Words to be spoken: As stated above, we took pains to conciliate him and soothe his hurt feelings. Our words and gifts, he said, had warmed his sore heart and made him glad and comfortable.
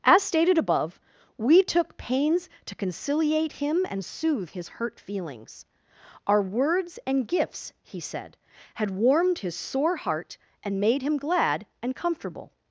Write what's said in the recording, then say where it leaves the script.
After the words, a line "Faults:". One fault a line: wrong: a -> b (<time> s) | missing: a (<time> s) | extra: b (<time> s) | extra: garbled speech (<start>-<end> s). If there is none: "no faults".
As stated above, we took pains to conciliate him and soothe his hurt feelings. Our words and gifts, he said, had warmed his sore heart and made him glad and comfortable.
Faults:
no faults